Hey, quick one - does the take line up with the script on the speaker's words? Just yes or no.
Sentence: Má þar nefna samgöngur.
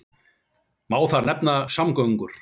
yes